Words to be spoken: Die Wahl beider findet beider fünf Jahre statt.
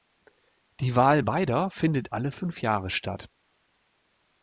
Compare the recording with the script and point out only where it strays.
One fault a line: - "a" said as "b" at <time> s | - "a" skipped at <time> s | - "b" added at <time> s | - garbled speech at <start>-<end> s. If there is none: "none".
- "beider" said as "alle" at 2.1 s